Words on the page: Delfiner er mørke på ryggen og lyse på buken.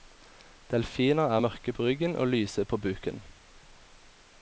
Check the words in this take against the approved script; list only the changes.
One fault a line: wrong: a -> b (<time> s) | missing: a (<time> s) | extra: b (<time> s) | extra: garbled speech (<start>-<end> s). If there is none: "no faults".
no faults